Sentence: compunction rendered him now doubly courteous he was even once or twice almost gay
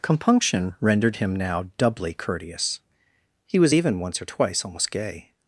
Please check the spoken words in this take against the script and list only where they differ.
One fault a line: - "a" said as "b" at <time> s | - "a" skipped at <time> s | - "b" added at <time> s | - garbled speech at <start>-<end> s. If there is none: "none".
none